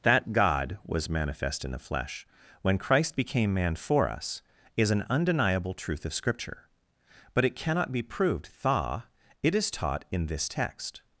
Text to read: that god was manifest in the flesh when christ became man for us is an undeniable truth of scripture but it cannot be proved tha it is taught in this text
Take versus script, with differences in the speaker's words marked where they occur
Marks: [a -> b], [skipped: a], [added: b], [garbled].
that god was manifest in the flesh when christ became man for us is an undeniable truth of scripture but it cannot be proved tha it is taught in this text